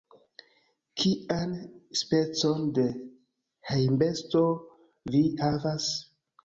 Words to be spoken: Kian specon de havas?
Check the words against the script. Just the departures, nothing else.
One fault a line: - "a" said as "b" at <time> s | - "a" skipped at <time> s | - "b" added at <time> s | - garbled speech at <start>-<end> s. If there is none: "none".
- "hejmbesto vi" added at 3.8 s